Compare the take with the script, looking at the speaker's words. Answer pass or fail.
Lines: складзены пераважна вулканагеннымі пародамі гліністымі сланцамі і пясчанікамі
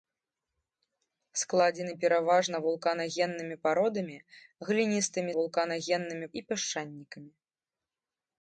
fail